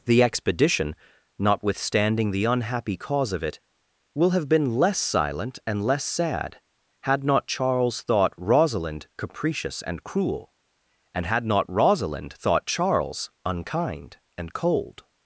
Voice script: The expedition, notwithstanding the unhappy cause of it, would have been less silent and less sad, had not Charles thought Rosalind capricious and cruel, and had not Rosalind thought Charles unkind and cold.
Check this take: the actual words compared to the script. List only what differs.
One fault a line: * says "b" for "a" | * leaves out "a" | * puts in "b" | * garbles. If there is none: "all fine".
* says "will" for "would"